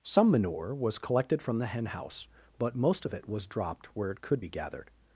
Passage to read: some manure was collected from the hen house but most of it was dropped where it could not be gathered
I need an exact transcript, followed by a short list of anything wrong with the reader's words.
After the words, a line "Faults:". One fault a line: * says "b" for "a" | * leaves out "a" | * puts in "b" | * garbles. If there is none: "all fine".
some manure was collected from the hen house but most of it was dropped where it could be gathered
Faults:
* leaves out "not"